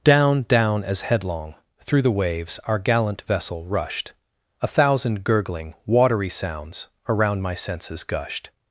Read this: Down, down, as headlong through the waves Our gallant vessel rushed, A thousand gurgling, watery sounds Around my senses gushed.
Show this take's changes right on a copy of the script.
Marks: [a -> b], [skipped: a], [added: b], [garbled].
Down, down, as headlong through the waves Our gallant vessel rushed, A thousand gurgling, watery sounds Around my senses gushed.